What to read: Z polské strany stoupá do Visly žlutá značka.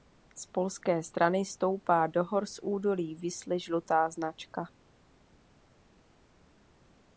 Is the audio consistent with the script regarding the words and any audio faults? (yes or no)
no